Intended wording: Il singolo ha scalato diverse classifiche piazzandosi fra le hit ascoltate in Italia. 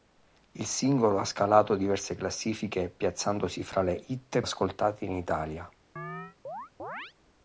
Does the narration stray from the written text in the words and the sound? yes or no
yes